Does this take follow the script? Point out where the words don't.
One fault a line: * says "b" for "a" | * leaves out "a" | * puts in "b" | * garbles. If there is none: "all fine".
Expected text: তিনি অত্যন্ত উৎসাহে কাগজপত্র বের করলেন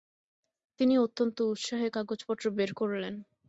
all fine